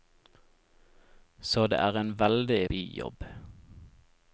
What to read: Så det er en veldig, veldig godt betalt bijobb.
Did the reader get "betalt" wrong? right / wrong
wrong